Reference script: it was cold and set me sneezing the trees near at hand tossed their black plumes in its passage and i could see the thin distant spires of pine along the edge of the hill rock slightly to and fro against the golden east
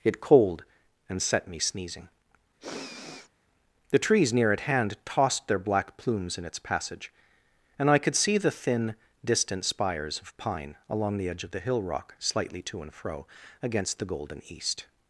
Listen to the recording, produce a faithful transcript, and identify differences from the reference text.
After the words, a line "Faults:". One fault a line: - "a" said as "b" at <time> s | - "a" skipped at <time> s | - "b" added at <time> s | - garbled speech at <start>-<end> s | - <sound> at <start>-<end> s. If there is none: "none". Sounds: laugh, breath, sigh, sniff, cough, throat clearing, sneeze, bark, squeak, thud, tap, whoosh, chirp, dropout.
it cold and set me sneezing the trees near at hand tossed their black plumes in its passage and i could see the thin distant spires of pine along the edge of the hill rock slightly to and fro against the golden east
Faults:
- "was" skipped at 0.2 s
- sniff at 2.6-3.3 s